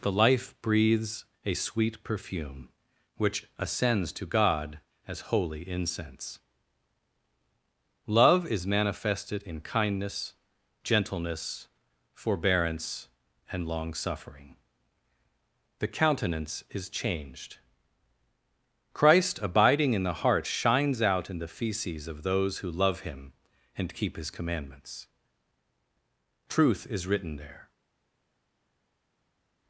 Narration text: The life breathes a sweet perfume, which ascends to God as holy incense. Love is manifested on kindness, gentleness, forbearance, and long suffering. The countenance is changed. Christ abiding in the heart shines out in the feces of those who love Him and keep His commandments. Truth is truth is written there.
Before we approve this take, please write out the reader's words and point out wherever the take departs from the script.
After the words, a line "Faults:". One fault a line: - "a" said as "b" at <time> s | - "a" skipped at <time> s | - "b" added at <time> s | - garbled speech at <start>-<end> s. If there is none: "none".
The life breathes a sweet perfume, which ascends to God as holy incense. Love is manifested in kindness, gentleness, forbearance, and long suffering. The countenance is changed. Christ abiding in the heart shines out in the feces of those who love Him and keep His commandments. Truth is written there.
Faults:
- "on" said as "in" at 9.4 s
- "truth is" skipped at 27.1 s